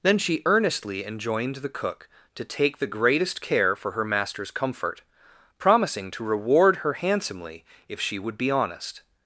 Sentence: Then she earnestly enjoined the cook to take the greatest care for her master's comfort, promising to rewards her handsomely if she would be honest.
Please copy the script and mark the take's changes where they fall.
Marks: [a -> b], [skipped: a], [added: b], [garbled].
Then she earnestly enjoined the cook to take the greatest care for her master's comfort, promising to [rewards -> reward] her handsomely if she would be honest.